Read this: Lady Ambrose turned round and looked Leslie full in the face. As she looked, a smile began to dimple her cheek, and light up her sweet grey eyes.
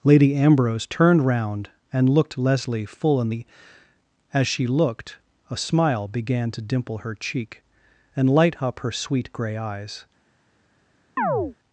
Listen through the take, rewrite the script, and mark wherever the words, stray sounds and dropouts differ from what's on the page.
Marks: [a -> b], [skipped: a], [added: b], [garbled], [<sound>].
Lady Ambrose turned round and looked Leslie full in the [skipped: face.] As she looked, a smile began to dimple her cheek, and light up her sweet grey eyes. [chirp]